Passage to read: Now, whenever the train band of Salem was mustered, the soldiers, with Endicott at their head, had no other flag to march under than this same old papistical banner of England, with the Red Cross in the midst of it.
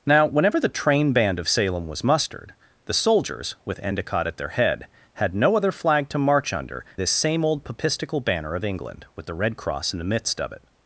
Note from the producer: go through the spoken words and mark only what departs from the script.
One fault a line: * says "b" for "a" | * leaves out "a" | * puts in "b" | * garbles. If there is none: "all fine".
* leaves out "than"